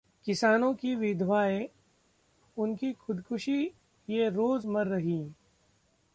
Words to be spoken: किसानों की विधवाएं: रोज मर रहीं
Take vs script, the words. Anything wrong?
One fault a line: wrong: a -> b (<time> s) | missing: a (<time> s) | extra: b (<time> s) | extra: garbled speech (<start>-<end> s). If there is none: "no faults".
extra: उनकी खुदकुशी ये (2.6 s)